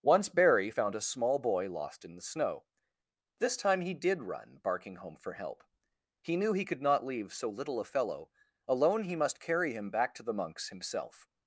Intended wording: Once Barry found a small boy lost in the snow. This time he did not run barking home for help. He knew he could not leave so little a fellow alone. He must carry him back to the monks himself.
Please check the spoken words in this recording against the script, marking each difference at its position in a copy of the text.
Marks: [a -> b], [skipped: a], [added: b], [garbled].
Once Barry found a small boy lost in the snow. This time he did [skipped: not] run barking home for help. He knew he could not leave so little a fellow alone. He must carry him back to the monks himself.